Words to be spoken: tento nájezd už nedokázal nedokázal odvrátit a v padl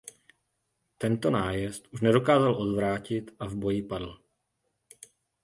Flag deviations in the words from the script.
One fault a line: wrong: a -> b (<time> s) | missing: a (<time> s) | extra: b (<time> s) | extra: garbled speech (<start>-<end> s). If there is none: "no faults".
missing: nedokázal (2.5 s)
extra: boji (3.5 s)